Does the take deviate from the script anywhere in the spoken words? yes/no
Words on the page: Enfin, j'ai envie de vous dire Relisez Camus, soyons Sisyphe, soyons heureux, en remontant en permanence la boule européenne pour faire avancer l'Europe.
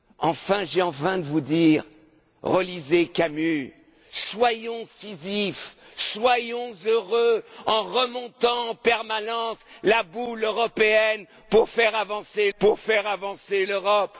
yes